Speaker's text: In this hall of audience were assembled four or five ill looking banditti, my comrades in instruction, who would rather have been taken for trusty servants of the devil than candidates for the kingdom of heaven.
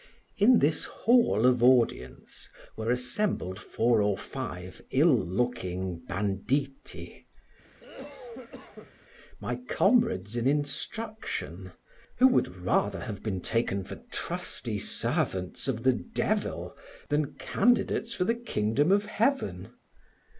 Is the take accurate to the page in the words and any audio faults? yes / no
no